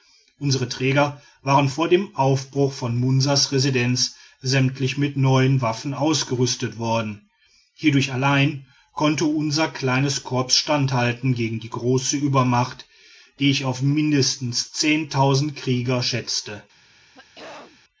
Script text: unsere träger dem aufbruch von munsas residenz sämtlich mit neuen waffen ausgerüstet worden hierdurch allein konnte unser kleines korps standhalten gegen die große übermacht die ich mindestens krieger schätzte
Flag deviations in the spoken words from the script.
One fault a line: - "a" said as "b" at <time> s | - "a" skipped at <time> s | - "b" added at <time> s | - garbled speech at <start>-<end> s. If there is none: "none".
- "waren vor" added at 1.4 s
- "auf" added at 13.6 s